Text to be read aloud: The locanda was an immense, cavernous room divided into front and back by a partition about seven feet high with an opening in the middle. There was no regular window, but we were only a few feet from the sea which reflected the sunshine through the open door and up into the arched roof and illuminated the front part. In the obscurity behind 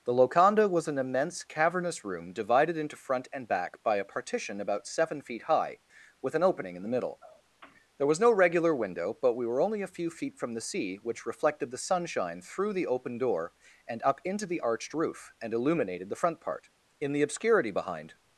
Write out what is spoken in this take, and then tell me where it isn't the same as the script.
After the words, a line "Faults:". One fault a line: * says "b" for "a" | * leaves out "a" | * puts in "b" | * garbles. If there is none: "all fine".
The locanda was an immense, cavernous room divided into front and back by a partition about seven feet high with an opening in the middle. There was no regular window, but we were only a few feet from the sea which reflected the sunshine through the open door and up into the arched roof and illuminated the front part. In the obscurity behind
Faults:
all fine